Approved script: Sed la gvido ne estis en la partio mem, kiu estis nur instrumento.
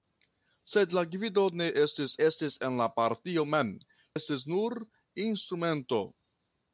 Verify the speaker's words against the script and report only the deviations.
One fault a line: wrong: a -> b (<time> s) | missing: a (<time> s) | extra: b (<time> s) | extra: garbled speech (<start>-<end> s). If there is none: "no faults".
extra: estis (2.2 s)
missing: kiu (3.7 s)